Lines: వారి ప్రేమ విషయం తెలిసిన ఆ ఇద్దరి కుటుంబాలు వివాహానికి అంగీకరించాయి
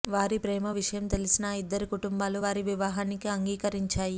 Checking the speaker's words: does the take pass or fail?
fail